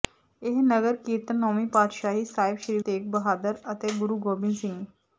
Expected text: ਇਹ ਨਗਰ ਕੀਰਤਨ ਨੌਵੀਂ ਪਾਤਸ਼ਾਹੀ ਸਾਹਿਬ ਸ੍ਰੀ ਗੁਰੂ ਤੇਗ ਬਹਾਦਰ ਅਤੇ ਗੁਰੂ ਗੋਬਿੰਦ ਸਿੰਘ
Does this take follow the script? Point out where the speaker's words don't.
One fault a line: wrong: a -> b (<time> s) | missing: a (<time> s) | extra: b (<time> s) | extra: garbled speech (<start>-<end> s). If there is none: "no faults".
missing: ਗੁਰੂ (2.8 s)